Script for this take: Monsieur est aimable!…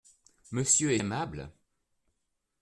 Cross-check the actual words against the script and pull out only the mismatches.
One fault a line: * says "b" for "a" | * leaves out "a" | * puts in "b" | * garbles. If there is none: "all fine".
all fine